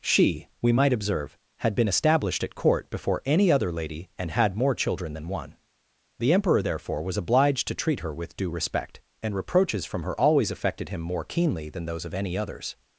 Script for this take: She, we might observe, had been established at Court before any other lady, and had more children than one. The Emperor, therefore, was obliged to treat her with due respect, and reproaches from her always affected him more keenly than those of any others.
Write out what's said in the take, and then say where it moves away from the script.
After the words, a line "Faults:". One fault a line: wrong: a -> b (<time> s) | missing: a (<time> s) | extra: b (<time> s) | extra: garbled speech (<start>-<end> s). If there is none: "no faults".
She, we might observe, had been established at Court before any other lady, and had more children than one. The Emperor, therefore, was obliged to treat her with due respect, and reproaches from her always affected him more keenly than those of any others.
Faults:
no faults